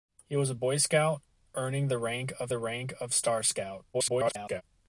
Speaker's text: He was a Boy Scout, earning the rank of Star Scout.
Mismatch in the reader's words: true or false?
true